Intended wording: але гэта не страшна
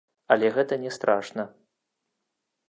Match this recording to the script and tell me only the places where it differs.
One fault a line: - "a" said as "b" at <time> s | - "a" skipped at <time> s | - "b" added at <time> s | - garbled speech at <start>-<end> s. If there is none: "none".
none